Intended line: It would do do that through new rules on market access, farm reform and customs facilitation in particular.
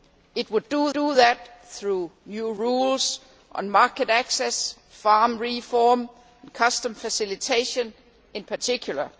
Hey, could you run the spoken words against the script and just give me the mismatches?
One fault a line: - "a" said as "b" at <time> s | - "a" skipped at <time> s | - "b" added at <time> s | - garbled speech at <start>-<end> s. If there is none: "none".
none